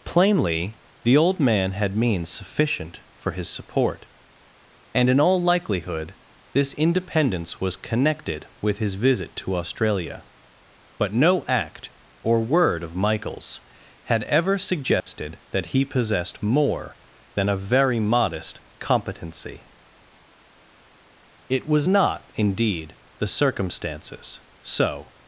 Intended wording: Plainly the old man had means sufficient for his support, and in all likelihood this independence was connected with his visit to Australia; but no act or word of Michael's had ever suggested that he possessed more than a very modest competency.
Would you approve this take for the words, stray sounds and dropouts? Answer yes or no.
no